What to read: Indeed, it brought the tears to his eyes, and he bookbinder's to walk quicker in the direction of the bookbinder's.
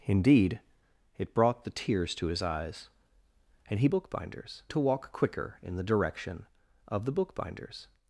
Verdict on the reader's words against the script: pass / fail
pass